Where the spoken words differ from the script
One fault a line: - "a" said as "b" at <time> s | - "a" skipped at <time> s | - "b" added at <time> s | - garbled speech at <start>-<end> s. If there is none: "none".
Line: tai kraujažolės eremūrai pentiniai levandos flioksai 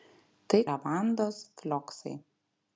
- "kraujažolės eremūrai pentiniai" skipped at 0.6 s